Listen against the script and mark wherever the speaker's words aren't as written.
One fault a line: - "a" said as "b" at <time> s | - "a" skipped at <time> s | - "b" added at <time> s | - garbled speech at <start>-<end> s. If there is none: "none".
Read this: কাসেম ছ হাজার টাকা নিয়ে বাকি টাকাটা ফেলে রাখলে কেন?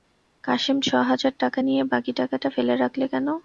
none